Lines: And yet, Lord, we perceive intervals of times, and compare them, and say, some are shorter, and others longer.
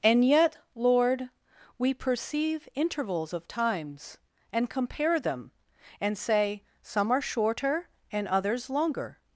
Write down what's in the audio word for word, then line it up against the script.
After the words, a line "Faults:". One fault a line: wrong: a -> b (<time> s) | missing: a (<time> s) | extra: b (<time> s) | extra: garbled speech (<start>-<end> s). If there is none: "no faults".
And yet, Lord, we perceive intervals of times, and compare them, and say, some are shorter, and others longer.
Faults:
no faults